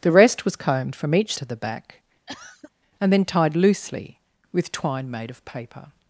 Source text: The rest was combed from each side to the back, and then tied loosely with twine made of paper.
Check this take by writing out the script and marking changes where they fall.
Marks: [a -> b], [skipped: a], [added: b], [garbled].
The rest was combed from each [skipped: side] to the back, and then tied loosely with twine made of paper.